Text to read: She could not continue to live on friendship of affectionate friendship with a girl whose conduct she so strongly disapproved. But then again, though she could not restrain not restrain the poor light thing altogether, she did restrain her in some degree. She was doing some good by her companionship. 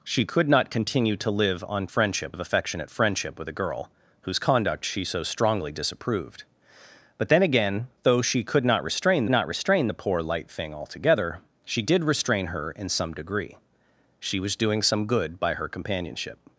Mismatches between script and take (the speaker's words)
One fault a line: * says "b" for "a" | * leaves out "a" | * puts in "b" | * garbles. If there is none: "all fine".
all fine